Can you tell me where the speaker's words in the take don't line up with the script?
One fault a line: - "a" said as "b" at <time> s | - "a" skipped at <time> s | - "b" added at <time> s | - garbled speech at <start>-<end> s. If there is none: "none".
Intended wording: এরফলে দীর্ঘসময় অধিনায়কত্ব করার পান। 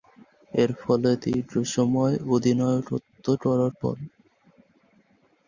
none